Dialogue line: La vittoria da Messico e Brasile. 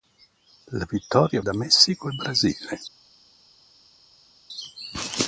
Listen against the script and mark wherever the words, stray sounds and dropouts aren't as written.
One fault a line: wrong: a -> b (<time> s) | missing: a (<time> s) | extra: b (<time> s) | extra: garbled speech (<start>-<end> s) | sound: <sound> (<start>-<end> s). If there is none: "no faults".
no faults